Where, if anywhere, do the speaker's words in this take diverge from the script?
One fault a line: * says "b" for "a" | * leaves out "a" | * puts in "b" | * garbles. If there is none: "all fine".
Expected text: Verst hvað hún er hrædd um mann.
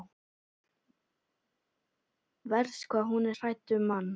all fine